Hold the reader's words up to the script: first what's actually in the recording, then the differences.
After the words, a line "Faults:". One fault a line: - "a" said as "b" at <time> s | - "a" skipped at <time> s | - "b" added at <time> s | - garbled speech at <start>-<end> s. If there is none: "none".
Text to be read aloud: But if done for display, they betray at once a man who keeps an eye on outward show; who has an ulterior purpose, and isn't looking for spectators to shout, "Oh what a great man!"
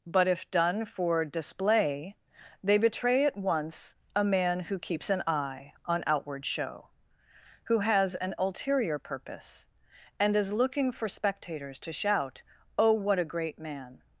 But if done for display, they betray at once a man who keeps an eye on outward show; who has an ulterior purpose, and is looking for spectators to shout, "Oh what a great man!"
Faults:
- "isn't" said as "is" at 10.3 s